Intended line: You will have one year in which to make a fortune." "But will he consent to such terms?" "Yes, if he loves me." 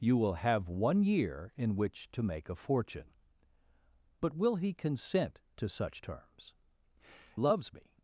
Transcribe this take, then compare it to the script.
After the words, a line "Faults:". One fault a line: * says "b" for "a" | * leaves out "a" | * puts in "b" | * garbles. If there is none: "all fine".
You will have one year in which to make a fortune." "But will he consent to such terms?" "Loves me."
Faults:
* leaves out "Yes if he"